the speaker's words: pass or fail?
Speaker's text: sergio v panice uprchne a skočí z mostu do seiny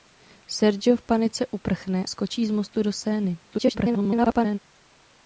fail